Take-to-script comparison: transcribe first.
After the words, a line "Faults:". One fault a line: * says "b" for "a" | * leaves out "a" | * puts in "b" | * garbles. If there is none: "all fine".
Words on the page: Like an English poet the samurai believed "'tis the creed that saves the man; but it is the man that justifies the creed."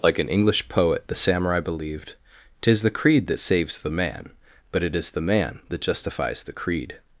Like an English poet the samurai believed "'tis the creed that saves the man; but it is the man that justifies the creed."
Faults:
all fine